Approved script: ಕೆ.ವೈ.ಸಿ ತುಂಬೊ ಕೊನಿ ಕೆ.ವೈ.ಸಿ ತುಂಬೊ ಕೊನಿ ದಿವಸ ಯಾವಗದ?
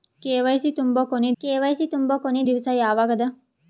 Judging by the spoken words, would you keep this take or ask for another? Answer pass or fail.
pass